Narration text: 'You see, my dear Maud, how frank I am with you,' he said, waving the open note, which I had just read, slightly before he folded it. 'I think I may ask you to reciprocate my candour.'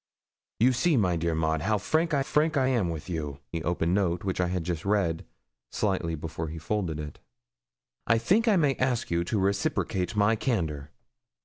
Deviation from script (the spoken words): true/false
true